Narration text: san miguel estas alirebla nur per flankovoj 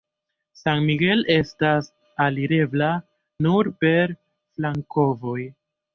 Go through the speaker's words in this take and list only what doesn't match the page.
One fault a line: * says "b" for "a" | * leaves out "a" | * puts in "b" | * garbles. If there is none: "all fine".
all fine